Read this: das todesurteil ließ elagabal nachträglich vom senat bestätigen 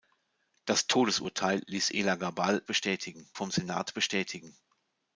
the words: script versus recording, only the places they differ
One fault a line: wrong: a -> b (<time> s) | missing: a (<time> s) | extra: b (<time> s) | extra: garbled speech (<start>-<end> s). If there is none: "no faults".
wrong: nachträglich -> bestätigen (2.7 s)